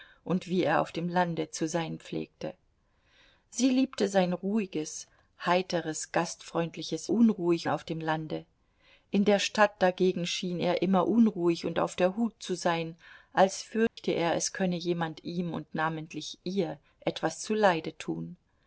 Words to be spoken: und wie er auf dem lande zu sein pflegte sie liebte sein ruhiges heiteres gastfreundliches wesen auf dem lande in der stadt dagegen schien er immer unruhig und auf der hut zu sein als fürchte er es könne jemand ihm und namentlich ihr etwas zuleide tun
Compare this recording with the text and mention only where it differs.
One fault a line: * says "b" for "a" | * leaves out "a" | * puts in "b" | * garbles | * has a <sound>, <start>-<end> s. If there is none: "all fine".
* says "unruhig" for "wesen"
* has a dropout, 13.9-14.0 s